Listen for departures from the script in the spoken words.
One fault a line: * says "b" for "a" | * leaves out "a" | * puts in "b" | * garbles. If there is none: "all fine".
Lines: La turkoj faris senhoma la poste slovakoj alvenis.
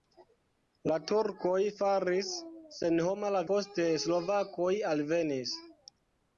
all fine